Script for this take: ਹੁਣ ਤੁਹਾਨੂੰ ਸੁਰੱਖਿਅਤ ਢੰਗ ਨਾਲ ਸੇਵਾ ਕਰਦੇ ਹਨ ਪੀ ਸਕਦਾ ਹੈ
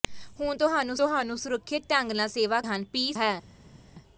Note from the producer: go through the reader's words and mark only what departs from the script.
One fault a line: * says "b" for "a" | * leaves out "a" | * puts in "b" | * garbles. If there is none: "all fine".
* puts in "ਤੁਹਾਨੂੰ"
* leaves out "ਕਰਦੇ"
* leaves out "ਸਕਦਾ"